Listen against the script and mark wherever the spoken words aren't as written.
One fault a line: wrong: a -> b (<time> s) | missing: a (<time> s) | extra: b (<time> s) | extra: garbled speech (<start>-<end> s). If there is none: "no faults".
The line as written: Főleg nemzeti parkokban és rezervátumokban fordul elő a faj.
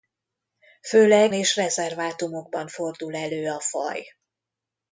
missing: nemzeti parkokban (1.3 s)